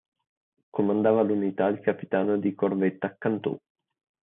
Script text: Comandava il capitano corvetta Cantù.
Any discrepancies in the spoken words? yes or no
yes